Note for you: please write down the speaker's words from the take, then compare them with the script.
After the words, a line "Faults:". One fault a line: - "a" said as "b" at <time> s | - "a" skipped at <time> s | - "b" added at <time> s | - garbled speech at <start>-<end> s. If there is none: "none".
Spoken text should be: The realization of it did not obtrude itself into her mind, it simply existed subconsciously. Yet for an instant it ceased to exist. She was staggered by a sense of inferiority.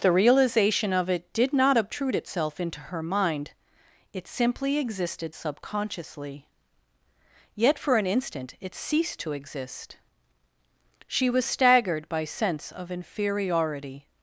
The realization of it did not obtrude itself into her mind, it simply existed subconsciously. Yet for an instant it ceased to exist. She was staggered by sense of inferiority.
Faults:
- "a" skipped at 12.2 s